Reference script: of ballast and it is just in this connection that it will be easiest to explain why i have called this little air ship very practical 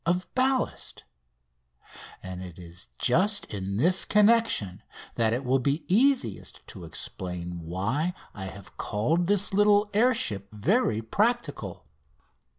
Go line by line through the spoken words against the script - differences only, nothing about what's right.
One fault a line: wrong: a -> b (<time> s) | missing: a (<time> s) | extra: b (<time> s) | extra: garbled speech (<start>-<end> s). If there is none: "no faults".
no faults